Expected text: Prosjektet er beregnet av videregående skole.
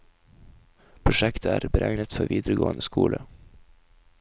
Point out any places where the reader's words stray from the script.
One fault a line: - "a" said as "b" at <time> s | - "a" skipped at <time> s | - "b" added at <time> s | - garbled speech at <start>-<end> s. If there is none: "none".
- "av" said as "for" at 2.1 s